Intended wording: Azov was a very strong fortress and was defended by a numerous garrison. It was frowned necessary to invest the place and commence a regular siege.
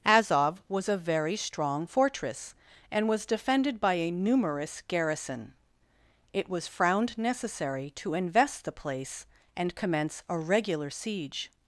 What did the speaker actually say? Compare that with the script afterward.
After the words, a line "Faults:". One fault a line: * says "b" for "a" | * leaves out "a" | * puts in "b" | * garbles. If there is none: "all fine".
Azov was a very strong fortress and was defended by a numerous garrison. It was frowned necessary to invest the place and commence a regular siege.
Faults:
all fine